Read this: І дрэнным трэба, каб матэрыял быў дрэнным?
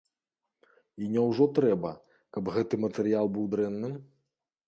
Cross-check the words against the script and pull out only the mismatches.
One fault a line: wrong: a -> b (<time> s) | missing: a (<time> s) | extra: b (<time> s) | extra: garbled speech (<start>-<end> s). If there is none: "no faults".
wrong: дрэнным -> няўжо (1.1 s)
extra: гэты (2.6 s)